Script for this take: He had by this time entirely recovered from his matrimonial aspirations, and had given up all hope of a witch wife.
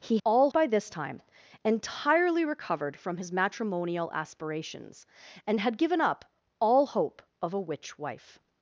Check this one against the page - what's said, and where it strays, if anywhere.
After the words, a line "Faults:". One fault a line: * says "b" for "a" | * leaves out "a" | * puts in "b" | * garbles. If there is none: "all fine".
He all by this time entirely recovered from his matrimonial aspirations, and had given up all hope of a witch wife.
Faults:
* says "all" for "had"